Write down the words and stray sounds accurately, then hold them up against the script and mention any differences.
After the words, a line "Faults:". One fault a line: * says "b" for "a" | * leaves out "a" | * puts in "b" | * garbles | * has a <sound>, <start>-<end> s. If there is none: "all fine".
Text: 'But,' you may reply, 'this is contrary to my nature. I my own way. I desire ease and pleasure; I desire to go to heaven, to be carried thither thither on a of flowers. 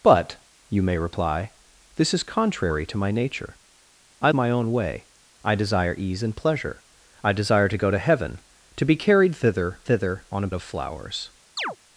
'But,' you may reply, 'this is contrary to my nature. I my own way. I desire ease and pleasure; I desire to go to heaven, to be carried thither thither on a of flowers.
Faults:
* has a chirp, 11.6-11.8 s